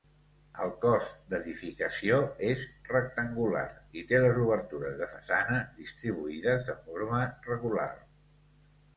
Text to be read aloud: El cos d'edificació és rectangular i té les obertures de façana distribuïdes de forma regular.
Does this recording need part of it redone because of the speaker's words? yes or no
no